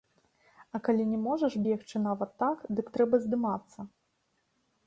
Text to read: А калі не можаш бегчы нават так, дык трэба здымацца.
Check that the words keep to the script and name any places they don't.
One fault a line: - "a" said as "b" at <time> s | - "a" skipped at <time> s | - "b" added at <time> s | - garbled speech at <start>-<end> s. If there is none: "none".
none